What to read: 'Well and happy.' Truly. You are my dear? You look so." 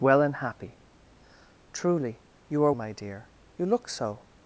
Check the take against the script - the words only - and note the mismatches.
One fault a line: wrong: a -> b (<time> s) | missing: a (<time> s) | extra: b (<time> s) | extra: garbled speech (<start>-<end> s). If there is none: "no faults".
no faults